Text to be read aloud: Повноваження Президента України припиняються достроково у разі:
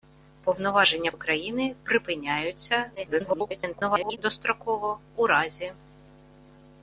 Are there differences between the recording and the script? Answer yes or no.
yes